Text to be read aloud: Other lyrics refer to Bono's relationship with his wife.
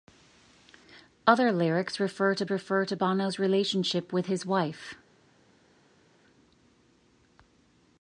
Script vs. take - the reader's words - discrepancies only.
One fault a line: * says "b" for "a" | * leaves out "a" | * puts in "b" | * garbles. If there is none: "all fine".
* puts in "refer to"